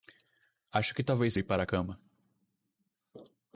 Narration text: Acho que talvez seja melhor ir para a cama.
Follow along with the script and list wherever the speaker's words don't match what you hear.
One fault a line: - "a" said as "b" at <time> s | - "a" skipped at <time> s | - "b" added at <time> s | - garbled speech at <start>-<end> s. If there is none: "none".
- "seja melhor" skipped at 1.3 s